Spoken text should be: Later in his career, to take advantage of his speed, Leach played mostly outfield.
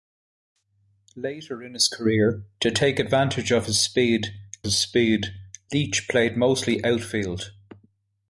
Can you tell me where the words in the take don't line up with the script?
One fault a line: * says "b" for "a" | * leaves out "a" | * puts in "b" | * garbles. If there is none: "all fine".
* puts in "his speed"